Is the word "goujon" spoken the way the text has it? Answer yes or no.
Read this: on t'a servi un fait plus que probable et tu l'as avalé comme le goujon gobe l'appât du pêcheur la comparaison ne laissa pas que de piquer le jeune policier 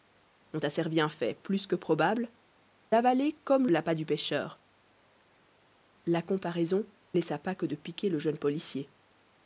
no